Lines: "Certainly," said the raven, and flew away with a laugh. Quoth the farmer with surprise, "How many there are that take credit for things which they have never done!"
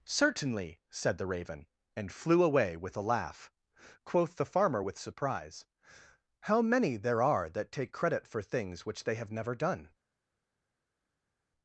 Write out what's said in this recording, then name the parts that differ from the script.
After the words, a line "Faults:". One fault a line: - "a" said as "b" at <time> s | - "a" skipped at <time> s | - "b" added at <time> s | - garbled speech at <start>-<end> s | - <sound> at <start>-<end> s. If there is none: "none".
"Certainly," said the raven, and flew away with a laugh. Quoth the farmer with surprise, "How many there are that take credit for things which they have never done!"
Faults:
none